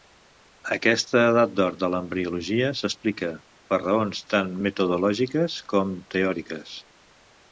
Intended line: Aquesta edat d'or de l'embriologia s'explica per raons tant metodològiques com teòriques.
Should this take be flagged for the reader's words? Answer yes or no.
no